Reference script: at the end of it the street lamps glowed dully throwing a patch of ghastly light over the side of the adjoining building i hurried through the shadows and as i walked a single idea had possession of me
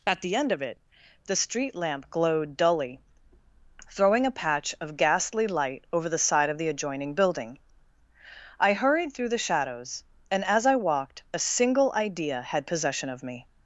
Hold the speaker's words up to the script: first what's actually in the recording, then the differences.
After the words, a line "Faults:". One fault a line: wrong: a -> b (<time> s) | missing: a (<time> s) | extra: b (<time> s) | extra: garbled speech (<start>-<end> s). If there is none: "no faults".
at the end of it the street lamp glowed dully throwing a patch of ghastly light over the side of the adjoining building i hurried through the shadows and as i walked a single idea had possession of me
Faults:
wrong: lamps -> lamp (1.8 s)